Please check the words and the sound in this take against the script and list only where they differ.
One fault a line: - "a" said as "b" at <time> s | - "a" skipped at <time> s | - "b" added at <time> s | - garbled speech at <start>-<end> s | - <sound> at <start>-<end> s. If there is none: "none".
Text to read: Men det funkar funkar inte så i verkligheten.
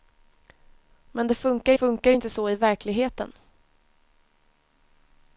none